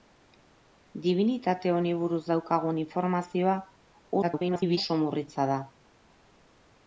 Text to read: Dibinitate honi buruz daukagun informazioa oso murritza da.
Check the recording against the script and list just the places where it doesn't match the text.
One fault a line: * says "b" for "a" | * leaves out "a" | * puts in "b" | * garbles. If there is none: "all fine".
* garbles